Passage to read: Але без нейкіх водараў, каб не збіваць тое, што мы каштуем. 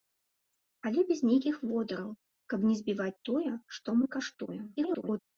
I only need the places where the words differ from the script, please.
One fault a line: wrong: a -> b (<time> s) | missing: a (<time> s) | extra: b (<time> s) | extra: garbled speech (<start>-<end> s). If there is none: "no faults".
extra: garbled speech (4.8-5.2 s)